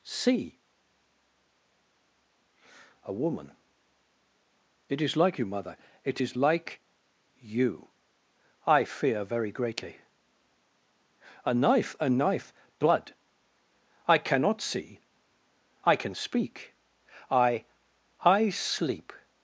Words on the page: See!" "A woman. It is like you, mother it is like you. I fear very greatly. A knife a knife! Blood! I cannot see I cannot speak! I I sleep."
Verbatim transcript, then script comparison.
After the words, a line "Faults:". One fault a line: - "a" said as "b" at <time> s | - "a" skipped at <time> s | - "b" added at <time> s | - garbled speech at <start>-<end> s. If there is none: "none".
See!" "A woman. It is like you, mother it is like you. I fear very greatly. A knife a knife! Blood! I cannot see I can speak! I I sleep."
Faults:
- "cannot" said as "can" at 16.0 s